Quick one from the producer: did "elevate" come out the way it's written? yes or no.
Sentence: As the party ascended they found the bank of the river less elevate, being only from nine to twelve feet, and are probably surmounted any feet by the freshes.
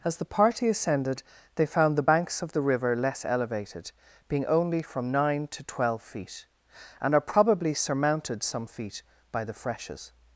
no